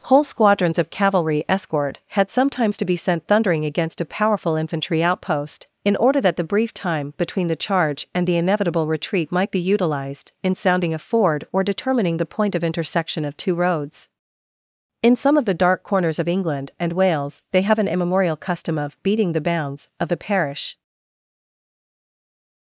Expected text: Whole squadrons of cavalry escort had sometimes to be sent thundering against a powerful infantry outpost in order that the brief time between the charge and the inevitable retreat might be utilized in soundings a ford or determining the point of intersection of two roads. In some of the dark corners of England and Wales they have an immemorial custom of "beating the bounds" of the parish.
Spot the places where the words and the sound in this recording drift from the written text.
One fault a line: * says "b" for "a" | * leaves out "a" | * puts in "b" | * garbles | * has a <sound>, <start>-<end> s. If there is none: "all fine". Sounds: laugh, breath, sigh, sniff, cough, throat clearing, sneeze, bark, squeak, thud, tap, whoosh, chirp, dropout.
* says "sounding" for "soundings"